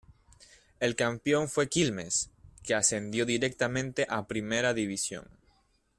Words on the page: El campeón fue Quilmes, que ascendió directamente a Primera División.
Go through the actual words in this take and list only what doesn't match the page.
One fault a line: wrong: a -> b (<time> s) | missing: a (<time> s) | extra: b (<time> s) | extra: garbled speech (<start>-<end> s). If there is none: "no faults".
no faults